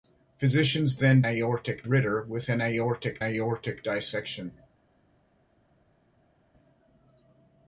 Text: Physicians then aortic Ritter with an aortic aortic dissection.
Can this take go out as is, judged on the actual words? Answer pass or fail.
pass